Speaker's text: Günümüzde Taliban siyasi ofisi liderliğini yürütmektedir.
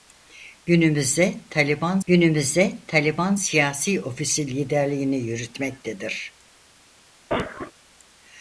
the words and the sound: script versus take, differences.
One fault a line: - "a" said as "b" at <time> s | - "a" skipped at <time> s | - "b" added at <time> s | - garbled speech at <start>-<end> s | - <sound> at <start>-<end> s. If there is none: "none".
- "günümüzde Taliban" added at 2.1 s
- cough at 7.3-7.7 s